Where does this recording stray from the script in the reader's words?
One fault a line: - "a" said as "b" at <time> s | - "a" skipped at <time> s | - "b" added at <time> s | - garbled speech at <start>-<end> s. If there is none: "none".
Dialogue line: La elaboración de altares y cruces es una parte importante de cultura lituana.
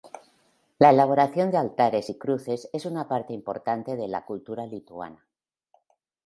- "la" added at 4.1 s